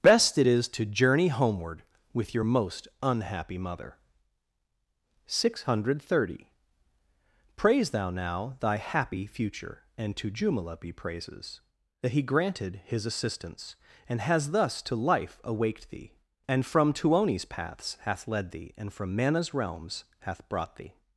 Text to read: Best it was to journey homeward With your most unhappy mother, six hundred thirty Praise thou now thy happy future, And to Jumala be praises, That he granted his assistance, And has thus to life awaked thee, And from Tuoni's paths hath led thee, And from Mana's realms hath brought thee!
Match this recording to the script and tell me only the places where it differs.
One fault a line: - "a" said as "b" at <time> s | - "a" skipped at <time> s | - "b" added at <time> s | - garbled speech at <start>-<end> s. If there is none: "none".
- "was" said as "is" at 0.5 s